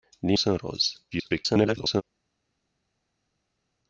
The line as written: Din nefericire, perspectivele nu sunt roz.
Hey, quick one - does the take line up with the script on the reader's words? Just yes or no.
no